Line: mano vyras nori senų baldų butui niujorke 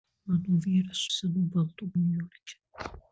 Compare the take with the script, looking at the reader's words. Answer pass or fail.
fail